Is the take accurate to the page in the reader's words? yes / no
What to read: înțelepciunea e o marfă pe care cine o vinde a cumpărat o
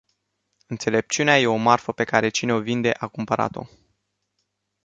yes